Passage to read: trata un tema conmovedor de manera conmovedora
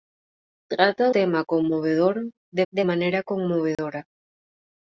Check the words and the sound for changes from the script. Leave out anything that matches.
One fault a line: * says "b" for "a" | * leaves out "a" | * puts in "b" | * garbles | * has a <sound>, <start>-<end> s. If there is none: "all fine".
* leaves out "un"
* puts in "de"
* has a dropout, 3.7-3.8 s